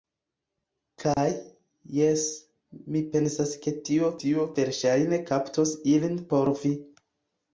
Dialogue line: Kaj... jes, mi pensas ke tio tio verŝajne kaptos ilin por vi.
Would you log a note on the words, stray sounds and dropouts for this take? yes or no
yes